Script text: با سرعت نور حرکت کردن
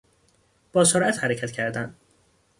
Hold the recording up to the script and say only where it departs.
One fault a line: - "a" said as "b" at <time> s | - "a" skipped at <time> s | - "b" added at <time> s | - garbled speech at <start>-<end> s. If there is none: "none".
- "نور" skipped at 1.2 s